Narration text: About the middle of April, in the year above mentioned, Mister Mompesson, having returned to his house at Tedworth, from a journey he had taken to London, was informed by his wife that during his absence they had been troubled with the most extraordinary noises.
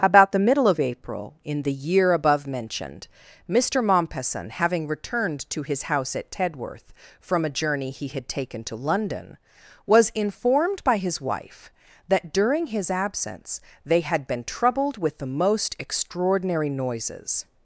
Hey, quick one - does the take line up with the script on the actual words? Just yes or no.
yes